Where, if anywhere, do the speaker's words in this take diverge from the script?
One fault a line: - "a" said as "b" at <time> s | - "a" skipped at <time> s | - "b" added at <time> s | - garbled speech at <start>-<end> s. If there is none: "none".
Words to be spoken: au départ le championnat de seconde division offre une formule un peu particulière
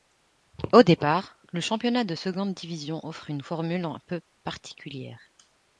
none